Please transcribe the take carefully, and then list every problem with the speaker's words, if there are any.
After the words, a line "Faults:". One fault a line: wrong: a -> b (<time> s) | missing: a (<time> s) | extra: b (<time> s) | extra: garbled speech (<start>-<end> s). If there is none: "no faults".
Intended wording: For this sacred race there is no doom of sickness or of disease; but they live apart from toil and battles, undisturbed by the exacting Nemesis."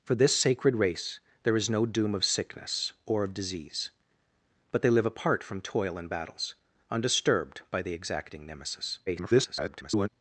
For this sacred race there is no doom of sickness or of disease; but they live apart from toil and battles, undisturbed by the exacting Nemesis." [garbled]
Faults:
extra: garbled speech (9.1-10.1 s)